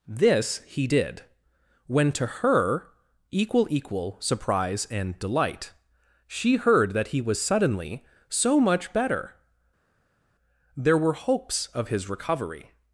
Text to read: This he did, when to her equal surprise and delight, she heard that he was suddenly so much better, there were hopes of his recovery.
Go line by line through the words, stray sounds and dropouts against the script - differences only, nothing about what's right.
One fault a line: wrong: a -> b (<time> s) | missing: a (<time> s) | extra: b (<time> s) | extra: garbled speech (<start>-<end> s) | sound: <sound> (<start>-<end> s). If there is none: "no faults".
extra: equal (3.7 s)